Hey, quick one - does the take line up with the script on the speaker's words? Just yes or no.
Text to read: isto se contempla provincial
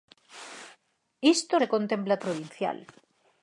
yes